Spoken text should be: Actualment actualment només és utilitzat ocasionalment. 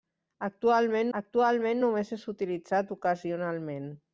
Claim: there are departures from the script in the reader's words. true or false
false